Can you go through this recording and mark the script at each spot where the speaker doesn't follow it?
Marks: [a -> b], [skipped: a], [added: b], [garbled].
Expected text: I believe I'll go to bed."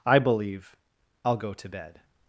I believe I'll go to bed."